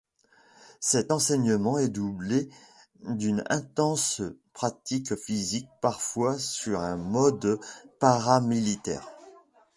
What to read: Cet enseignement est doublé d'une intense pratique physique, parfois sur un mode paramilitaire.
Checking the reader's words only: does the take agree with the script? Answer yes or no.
yes